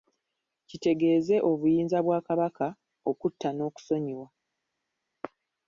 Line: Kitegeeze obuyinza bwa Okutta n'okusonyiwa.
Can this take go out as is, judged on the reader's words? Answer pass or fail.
fail